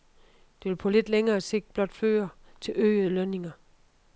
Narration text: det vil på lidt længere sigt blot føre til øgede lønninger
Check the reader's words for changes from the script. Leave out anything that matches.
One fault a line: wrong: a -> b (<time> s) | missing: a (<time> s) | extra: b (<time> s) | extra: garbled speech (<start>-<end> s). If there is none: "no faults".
no faults